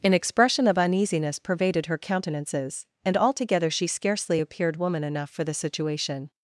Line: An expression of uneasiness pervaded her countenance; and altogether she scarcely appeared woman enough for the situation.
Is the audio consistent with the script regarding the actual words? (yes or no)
no